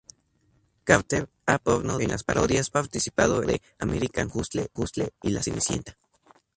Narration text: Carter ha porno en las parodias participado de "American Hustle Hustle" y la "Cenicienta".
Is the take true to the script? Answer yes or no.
yes